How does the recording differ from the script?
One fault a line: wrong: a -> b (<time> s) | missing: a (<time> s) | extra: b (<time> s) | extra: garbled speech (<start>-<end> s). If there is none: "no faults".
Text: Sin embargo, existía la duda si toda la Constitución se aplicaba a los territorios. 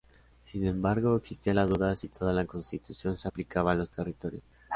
no faults